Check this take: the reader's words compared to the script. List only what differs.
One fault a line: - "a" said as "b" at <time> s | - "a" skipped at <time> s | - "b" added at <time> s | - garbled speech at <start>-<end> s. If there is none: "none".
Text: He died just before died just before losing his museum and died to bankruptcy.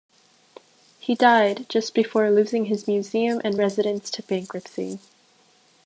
- "died just before" skipped at 2.3 s
- "died" said as "residence" at 3.6 s